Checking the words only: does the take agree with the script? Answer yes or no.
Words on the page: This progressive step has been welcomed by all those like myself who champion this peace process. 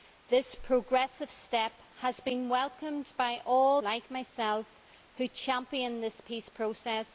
no